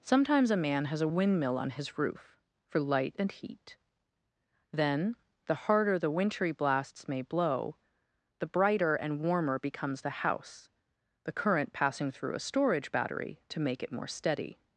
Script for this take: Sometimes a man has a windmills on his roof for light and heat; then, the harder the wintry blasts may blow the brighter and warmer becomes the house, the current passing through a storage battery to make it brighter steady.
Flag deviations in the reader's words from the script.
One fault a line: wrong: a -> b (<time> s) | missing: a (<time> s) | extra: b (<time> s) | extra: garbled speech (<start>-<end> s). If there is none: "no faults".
wrong: windmills -> windmill (1.1 s)
wrong: brighter -> more (13.9 s)